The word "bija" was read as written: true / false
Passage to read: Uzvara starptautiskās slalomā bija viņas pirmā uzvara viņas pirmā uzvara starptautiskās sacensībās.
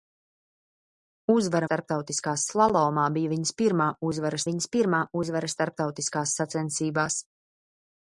true